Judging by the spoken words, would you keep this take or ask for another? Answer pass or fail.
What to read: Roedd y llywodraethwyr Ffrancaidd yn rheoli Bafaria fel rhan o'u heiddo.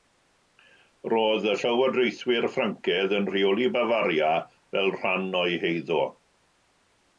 pass